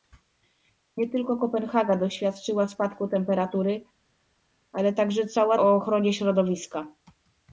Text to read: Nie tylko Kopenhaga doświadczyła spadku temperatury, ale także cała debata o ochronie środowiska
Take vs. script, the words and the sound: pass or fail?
fail